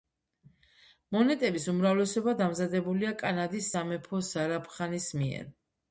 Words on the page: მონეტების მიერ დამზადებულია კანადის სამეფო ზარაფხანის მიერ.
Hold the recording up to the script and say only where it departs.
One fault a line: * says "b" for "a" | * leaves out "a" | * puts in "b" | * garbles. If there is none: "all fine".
* says "უმრავლესობა" for "მიერ"